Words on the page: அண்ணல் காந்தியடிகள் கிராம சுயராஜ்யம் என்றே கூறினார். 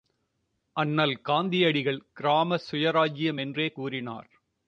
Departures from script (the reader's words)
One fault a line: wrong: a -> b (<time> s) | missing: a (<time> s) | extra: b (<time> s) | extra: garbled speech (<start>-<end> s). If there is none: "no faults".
no faults